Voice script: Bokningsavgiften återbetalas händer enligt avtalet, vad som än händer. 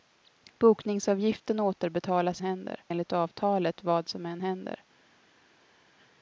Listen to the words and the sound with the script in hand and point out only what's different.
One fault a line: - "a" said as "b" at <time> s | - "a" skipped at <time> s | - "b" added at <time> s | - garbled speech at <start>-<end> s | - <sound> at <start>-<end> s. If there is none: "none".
none